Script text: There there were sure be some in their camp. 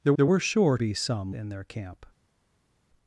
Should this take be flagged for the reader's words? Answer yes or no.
no